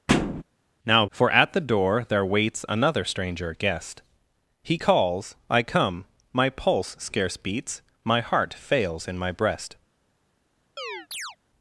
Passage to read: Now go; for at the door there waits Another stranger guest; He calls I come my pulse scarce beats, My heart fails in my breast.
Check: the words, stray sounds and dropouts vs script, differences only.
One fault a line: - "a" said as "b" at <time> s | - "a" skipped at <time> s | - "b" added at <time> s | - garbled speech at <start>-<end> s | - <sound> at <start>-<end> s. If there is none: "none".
- thud at 0.1-0.4 s
- "go" skipped at 1.0 s
- chirp at 10.8-11.4 s